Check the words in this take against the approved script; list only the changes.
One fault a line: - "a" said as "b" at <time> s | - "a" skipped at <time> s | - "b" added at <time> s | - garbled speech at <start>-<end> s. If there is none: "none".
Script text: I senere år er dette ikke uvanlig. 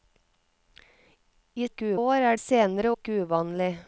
- "senere" said as "ikke" at 1.6 s
- "dette" said as "senere" at 2.4 s